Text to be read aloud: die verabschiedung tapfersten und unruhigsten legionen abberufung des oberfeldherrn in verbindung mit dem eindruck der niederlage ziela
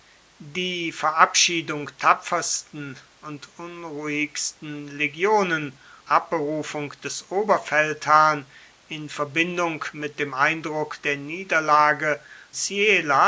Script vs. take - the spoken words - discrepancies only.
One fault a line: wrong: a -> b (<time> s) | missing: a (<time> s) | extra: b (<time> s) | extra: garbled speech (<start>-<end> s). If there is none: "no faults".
no faults